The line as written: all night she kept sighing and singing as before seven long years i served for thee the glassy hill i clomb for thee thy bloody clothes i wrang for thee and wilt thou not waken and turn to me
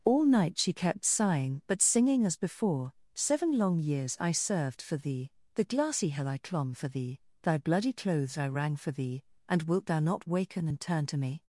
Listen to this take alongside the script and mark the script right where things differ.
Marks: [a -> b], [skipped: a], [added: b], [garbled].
all night she kept sighing [and -> but] singing as before seven long years i served for thee the glassy hill i clomb for thee thy bloody clothes i wrang for thee and wilt thou not waken and turn to me